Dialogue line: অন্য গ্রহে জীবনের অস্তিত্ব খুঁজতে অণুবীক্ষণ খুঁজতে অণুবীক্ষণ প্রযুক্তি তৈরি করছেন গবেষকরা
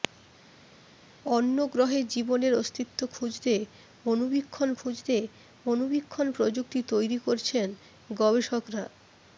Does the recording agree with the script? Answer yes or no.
yes